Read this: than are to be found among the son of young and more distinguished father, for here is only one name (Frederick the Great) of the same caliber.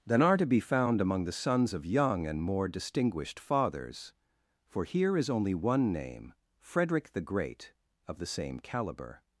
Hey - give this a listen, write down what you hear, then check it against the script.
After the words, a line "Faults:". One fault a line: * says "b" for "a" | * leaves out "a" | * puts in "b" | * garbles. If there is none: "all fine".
than are to be found among the sons of young and more distinguished fathers, for here is only one name (Frederick the Great) of the same caliber.
Faults:
* says "sons" for "son"
* says "fathers" for "father"